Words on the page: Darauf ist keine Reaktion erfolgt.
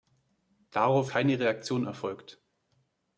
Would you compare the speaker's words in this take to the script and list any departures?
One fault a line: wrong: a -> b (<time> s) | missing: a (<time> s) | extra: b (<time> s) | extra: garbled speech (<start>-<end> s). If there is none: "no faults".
missing: ist (1.1 s)